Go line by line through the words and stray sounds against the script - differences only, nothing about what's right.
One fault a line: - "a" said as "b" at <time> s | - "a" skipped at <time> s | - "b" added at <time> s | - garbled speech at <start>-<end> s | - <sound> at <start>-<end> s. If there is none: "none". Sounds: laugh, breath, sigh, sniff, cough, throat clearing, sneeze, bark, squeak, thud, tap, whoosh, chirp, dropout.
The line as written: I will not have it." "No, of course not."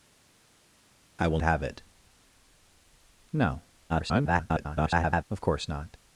- "not" skipped at 1.4 s
- garbled speech at 3.9-5.2 s